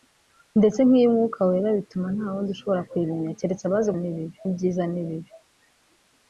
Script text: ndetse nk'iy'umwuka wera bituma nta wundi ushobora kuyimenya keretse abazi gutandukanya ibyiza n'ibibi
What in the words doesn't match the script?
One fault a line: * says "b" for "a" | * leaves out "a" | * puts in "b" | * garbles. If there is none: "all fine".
* says "n'ibibi" for "gutandukanya"